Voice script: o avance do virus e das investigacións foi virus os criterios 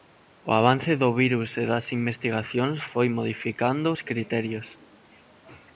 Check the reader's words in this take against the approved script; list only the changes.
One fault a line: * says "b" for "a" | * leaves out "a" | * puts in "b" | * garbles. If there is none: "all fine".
* says "modificando" for "virus"